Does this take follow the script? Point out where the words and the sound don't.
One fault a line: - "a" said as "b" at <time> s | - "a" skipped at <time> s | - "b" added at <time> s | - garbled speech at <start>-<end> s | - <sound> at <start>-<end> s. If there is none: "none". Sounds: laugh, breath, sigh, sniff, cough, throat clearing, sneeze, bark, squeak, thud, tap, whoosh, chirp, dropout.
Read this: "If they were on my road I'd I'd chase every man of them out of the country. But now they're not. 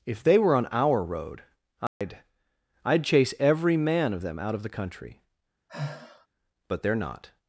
- "my" said as "our" at 0.7 s
- dropout at 1.9-2.0 s
- sigh at 5.7-6.3 s
- "now" skipped at 6.8 s